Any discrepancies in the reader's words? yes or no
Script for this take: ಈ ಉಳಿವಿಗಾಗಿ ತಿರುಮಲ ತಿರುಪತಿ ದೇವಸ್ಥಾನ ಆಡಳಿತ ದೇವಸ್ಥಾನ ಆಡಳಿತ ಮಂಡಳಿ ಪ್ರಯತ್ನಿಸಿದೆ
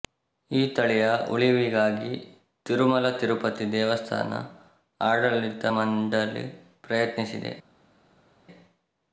yes